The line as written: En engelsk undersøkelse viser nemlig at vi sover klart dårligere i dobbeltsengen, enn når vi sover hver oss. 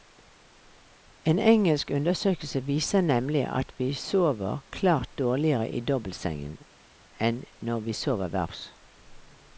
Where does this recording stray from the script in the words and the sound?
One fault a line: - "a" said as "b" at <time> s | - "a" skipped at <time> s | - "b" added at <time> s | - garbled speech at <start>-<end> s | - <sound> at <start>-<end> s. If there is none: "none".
none